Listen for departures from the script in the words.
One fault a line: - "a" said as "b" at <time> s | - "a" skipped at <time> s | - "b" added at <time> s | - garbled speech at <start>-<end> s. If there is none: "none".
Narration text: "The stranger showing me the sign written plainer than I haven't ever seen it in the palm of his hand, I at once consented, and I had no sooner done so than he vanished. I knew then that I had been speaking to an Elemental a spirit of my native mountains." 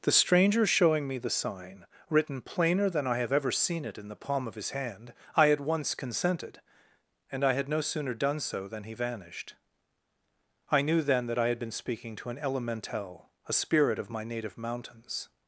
- "haven't" said as "have" at 3.2 s